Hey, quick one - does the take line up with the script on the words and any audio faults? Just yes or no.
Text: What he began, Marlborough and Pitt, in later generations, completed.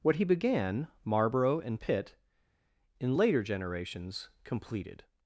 yes